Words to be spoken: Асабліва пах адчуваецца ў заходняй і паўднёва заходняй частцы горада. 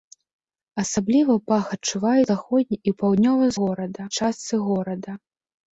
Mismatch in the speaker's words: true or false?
true